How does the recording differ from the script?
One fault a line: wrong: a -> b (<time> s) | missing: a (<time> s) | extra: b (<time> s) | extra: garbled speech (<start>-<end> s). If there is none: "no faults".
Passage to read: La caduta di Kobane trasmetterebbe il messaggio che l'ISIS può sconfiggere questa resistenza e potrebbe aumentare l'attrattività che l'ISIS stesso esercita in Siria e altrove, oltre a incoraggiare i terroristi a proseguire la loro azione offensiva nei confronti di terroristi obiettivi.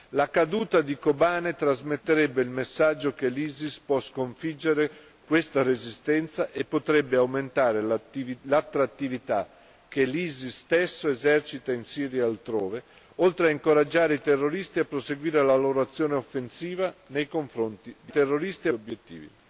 no faults